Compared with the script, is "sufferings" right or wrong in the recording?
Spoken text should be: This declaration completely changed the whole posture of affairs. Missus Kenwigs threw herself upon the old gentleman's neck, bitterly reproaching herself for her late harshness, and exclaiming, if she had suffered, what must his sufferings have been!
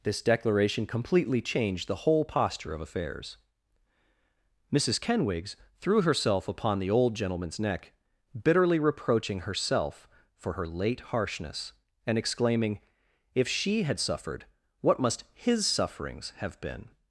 right